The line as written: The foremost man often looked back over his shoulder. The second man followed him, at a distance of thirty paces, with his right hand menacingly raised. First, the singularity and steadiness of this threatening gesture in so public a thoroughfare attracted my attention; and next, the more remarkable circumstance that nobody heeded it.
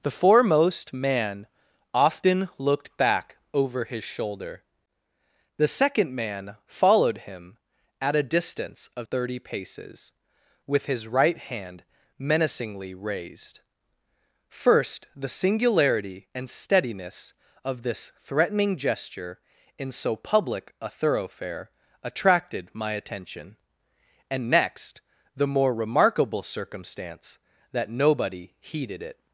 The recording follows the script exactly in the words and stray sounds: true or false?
true